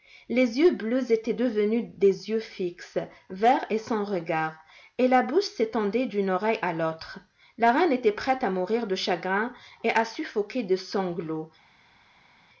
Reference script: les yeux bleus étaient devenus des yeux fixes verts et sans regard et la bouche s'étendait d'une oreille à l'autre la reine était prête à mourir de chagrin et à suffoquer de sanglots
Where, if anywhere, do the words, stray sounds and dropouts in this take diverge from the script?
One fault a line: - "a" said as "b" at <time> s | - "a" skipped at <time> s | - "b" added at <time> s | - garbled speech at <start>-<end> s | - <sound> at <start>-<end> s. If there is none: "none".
none